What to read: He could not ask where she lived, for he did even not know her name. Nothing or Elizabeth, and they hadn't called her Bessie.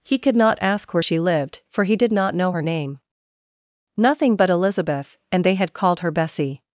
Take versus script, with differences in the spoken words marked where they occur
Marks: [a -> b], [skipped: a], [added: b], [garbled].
He could not ask where she lived, for he did [skipped: even] not know her name. Nothing [or -> but] Elizabeth, and they [hadn't -> had] called her Bessie.